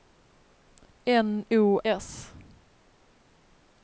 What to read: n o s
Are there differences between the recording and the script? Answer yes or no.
no